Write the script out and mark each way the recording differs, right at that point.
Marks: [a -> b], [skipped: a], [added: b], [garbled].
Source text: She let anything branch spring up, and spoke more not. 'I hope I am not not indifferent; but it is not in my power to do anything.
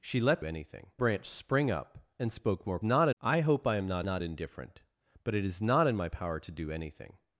She let anything branch spring up, and spoke more not. 'I hope I am not not indifferent; but it is not in my power to do anything.